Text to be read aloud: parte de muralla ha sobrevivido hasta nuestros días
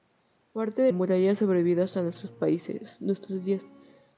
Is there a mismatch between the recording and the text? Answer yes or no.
no